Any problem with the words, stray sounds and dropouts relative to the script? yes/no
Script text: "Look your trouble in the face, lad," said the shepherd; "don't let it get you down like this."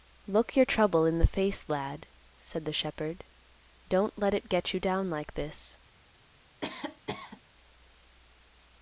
yes